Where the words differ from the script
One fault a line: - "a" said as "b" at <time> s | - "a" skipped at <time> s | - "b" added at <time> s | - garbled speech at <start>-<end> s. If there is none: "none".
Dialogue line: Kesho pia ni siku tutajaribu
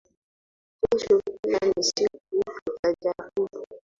none